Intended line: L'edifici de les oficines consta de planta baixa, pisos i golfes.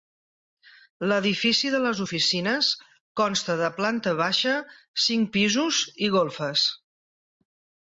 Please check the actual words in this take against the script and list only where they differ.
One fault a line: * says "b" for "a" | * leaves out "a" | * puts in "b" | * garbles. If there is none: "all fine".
* puts in "cinc"